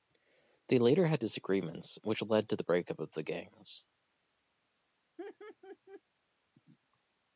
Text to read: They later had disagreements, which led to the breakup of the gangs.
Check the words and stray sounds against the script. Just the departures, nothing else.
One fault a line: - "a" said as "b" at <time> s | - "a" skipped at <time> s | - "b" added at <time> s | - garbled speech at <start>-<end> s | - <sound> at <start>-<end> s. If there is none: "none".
- laugh at 5.2-6.0 s